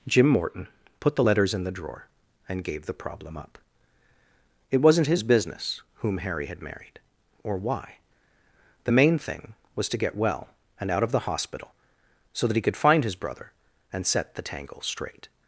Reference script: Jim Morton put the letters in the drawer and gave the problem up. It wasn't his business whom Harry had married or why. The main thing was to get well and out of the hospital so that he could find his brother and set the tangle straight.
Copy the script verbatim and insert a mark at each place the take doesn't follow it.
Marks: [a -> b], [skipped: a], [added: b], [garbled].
Jim Morton put the letters in the drawer and gave the problem up. It wasn't his business whom Harry had married or why. The main thing was to get well and out of the hospital so that he could find his brother and set the tangle straight.